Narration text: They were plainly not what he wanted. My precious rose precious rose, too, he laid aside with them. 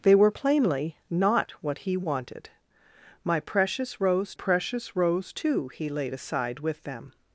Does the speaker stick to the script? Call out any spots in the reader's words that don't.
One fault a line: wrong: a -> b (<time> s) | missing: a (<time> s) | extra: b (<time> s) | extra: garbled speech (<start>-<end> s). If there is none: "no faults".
no faults